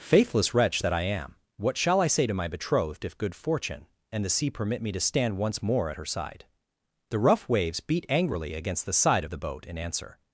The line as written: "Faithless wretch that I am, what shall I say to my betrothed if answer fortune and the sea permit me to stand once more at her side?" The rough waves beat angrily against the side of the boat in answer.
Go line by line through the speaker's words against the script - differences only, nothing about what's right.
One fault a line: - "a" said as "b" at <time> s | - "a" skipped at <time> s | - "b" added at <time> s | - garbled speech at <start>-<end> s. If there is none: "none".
- "answer" said as "good" at 3.2 s